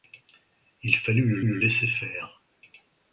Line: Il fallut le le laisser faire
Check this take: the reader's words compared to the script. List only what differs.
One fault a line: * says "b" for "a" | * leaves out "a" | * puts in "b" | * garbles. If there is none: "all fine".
all fine